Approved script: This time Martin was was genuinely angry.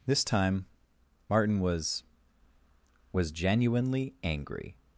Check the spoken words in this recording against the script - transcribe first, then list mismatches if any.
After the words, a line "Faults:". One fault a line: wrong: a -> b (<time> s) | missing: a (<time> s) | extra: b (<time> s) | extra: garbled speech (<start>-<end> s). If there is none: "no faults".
This time Martin was was genuinely angry.
Faults:
no faults